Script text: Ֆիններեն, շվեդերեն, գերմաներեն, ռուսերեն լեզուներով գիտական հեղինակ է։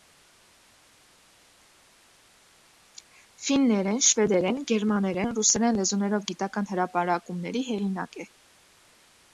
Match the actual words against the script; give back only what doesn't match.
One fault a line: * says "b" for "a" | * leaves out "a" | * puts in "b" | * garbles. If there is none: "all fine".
* puts in "հրապարակումների"